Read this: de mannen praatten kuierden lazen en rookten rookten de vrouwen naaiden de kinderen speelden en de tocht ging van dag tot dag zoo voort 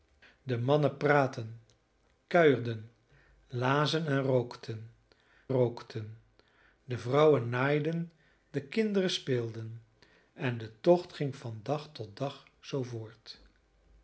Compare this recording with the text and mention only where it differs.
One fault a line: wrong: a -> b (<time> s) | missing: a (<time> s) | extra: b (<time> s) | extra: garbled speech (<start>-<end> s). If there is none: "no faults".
no faults